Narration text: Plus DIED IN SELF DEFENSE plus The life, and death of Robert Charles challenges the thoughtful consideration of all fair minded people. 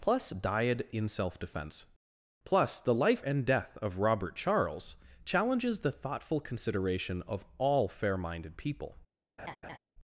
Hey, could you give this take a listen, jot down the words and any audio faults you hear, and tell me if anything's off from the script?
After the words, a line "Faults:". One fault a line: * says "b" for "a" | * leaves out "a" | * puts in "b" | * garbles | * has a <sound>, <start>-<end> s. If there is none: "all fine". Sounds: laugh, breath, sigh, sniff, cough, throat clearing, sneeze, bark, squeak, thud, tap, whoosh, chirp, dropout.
Plus DIED IN SELF DEFENSE plus The life, and death of Robert Charles challenges the thoughtful consideration of all fair minded people.
Faults:
* has a laugh, 9.4-9.8 s